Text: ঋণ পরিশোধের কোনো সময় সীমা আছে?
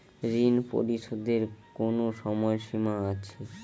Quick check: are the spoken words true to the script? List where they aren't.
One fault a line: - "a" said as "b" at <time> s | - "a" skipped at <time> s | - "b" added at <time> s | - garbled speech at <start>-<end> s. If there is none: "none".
none